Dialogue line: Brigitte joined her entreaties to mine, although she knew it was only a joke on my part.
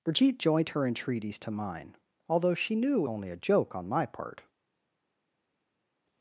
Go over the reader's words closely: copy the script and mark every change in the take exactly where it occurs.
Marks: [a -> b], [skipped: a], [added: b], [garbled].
Brigitte joined her entreaties to mine, although she knew [skipped: it was] only a joke on my part.